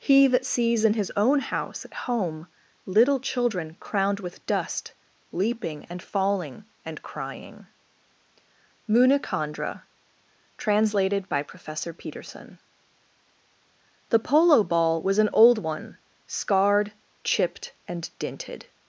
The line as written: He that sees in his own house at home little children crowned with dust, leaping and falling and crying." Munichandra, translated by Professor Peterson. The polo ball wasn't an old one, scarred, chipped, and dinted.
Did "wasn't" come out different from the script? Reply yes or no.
yes